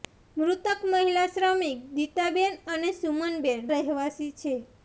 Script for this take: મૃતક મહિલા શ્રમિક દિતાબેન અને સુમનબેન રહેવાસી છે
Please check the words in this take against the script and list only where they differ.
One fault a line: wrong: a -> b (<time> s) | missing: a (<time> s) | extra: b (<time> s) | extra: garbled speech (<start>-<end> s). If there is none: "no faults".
no faults